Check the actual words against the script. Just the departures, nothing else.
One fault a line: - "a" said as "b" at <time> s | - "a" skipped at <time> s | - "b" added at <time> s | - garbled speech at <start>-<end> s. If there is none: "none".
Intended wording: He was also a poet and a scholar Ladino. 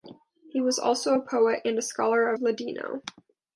none